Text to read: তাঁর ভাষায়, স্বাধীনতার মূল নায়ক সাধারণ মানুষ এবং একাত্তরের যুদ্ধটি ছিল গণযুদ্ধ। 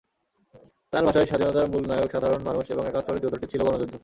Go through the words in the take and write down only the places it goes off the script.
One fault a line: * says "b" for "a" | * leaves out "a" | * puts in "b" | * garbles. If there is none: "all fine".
all fine